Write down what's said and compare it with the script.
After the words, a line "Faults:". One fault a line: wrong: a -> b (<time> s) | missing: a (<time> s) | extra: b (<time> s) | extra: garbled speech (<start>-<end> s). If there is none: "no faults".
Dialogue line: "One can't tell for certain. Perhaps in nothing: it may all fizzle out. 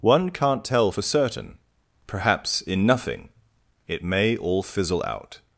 "One can't tell for certain. Perhaps in nothing: it may all fizzle out.
Faults:
no faults